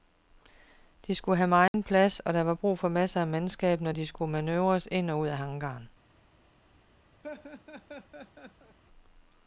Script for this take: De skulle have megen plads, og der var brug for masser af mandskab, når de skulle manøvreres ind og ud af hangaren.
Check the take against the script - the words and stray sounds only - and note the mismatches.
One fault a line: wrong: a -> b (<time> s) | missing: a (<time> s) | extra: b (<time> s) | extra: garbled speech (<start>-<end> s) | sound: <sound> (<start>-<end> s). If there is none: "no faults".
sound: dropout (1.7-1.7 s)
sound: laugh (7.2-8.8 s)